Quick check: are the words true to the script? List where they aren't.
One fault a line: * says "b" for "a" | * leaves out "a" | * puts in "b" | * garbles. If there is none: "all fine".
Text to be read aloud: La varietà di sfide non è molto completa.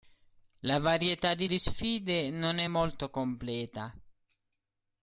* puts in "di"